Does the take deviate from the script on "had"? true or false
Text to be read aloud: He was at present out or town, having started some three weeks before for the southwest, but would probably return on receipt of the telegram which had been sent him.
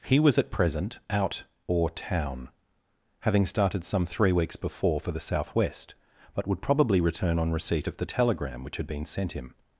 false